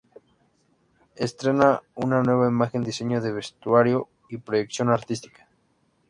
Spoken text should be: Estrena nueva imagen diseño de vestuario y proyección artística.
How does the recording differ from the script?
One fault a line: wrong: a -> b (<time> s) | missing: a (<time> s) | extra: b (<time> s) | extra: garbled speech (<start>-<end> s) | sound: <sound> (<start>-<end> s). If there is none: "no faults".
extra: una (1.9 s)